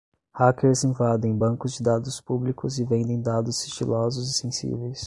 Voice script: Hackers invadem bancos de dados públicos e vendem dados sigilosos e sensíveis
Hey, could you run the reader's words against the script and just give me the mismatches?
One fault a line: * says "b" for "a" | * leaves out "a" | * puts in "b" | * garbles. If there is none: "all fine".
all fine